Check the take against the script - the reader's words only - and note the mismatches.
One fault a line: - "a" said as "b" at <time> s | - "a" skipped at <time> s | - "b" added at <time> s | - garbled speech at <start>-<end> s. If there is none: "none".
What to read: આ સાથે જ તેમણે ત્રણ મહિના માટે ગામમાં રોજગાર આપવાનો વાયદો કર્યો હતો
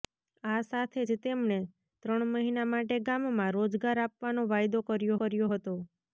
- "કર્યો" added at 5.2 s